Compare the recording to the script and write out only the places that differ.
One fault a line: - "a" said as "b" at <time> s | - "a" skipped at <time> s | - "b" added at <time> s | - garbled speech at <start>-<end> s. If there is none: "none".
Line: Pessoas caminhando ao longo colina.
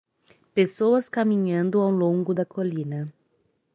- "da" added at 2.3 s